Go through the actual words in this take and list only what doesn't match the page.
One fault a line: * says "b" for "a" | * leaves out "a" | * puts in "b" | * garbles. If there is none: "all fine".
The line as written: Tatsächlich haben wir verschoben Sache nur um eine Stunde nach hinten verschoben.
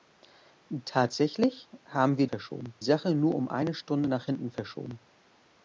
all fine